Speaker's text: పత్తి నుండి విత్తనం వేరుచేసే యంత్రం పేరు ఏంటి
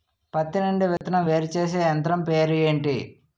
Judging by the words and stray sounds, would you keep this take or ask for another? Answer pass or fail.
fail